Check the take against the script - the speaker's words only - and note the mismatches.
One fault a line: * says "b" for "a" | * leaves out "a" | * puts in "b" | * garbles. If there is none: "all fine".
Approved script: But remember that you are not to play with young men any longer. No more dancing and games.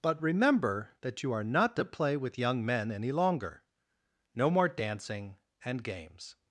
all fine